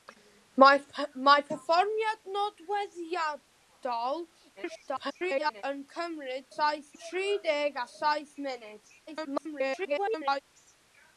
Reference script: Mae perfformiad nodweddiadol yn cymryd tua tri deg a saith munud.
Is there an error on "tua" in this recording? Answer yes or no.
yes